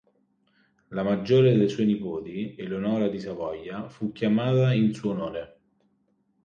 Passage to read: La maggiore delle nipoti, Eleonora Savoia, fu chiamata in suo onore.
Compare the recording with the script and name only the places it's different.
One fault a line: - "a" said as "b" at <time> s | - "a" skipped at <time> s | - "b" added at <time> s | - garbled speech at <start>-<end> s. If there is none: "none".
- "sue" added at 1.6 s
- "di" added at 3.1 s